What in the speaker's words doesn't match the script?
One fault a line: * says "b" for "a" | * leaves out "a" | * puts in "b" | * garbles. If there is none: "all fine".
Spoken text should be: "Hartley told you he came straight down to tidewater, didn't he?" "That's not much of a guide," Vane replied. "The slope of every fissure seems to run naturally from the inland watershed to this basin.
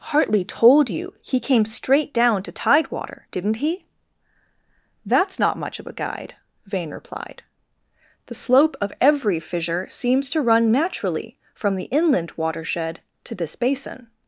all fine